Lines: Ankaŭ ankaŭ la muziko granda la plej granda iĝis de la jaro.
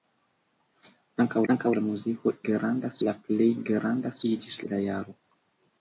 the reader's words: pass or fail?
pass